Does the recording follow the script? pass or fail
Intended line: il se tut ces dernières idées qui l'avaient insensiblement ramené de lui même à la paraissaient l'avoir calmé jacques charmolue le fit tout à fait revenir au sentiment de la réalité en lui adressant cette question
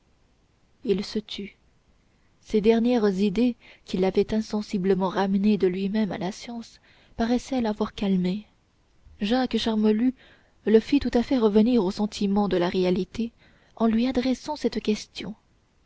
fail